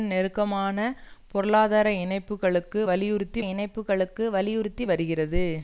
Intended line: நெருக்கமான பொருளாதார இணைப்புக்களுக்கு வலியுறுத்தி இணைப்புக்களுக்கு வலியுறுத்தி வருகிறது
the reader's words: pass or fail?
pass